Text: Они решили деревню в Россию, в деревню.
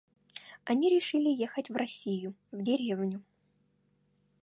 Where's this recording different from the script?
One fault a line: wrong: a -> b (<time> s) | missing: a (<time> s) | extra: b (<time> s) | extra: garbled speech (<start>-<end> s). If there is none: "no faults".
wrong: деревню -> ехать (1.3 s)